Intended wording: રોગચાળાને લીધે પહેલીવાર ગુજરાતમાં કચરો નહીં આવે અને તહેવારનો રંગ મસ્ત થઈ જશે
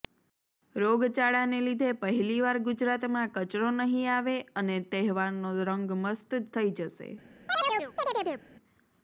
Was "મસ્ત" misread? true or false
false